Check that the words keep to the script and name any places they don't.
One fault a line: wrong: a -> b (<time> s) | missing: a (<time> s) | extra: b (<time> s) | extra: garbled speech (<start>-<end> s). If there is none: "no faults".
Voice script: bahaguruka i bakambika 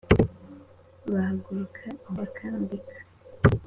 no faults